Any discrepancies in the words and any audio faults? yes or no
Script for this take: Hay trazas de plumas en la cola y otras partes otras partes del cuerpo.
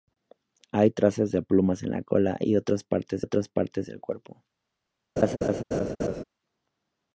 yes